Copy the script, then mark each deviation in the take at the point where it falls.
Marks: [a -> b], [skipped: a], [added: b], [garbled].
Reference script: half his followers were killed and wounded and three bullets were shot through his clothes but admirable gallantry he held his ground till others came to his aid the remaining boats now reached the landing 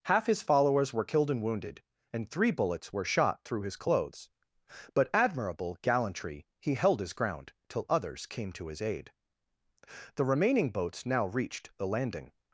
half his followers were killed and wounded and three bullets were shot through his clothes but admirable gallantry he held his ground till others came to his aid the remaining boats now reached the landing